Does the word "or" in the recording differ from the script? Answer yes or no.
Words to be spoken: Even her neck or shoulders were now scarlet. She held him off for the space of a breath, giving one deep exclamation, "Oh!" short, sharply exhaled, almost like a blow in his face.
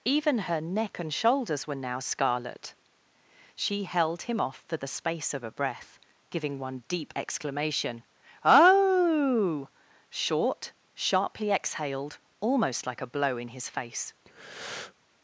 yes